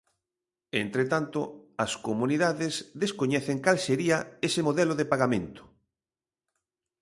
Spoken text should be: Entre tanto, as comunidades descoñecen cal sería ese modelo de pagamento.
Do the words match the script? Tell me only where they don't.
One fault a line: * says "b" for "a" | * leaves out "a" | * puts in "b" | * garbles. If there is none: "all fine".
all fine